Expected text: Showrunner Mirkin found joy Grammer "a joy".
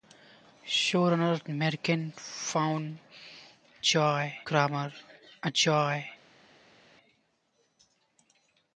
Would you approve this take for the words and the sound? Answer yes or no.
yes